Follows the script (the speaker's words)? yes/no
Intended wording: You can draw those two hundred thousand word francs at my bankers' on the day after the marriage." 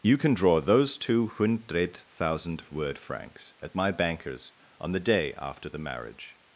yes